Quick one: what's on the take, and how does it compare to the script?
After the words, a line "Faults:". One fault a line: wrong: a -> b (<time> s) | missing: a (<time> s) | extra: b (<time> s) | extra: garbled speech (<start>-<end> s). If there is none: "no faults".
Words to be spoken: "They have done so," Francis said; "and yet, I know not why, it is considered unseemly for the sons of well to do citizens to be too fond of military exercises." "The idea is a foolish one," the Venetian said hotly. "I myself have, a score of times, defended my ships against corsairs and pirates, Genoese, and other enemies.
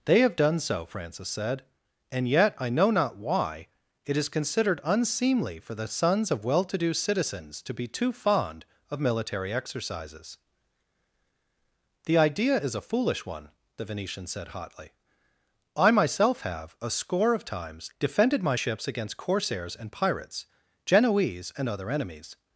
"They have done so," Francis said; "and yet, I know not why, it is considered unseemly for the sons of well to do citizens to be too fond of military exercises." "The idea is a foolish one," the Venetian said hotly. "I myself have, a score of times, defended my ships against corsairs and pirates, Genoese, and other enemies.
Faults:
no faults